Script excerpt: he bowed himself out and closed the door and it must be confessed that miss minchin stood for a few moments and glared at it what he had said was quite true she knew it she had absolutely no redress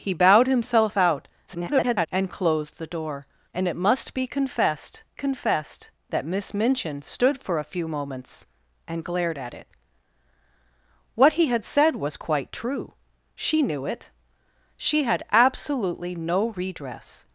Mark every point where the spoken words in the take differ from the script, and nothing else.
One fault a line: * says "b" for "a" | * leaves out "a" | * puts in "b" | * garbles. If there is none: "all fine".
* garbles
* puts in "confessed"